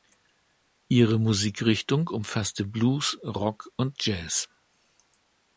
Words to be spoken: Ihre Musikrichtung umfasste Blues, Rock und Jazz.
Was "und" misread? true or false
false